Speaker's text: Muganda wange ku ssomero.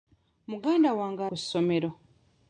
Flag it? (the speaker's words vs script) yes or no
no